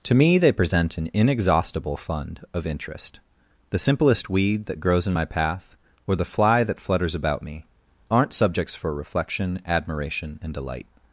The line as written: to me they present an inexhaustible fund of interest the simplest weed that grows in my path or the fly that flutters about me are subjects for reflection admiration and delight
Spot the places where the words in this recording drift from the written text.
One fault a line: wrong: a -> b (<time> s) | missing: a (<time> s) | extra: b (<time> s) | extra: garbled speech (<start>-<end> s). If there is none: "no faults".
wrong: are -> aren't (8.1 s)